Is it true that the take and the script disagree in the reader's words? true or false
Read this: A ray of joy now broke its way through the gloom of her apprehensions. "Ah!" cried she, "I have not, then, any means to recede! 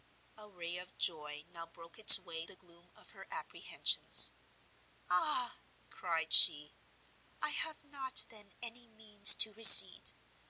true